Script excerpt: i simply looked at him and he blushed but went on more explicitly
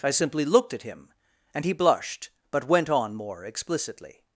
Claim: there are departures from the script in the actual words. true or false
false